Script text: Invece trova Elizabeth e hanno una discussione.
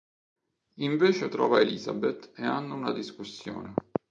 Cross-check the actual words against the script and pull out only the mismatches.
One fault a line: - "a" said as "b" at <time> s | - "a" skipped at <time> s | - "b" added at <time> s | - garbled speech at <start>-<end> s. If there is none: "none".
none